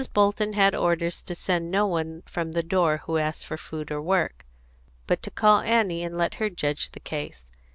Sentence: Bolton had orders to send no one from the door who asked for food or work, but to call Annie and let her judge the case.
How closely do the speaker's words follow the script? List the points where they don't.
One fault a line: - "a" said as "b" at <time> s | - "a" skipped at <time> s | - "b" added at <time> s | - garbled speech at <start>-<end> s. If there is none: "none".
none